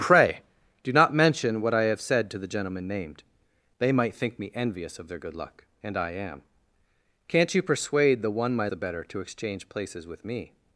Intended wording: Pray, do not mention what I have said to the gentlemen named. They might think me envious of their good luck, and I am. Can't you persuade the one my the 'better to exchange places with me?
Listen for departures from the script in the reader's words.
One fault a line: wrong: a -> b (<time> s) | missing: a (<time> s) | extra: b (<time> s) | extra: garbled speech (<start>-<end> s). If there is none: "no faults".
no faults